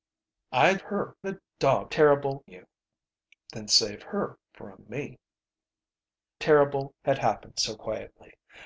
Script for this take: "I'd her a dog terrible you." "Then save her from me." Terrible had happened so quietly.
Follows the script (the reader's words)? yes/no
yes